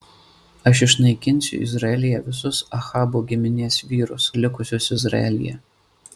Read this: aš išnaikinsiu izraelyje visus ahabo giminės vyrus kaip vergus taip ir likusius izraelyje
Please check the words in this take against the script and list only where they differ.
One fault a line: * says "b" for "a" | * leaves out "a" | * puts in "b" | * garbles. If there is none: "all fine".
* leaves out "kaip vergus taip"